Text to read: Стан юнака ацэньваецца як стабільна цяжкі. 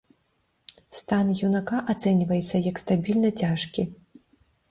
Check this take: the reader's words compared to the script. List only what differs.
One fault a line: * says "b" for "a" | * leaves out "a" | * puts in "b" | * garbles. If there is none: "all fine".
all fine